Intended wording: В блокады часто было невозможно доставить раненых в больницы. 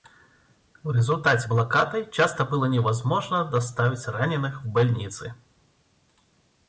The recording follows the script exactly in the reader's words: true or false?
false